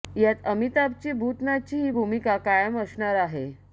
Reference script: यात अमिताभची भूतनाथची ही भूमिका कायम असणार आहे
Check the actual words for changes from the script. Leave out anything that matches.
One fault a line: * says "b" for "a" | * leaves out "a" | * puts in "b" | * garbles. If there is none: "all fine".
all fine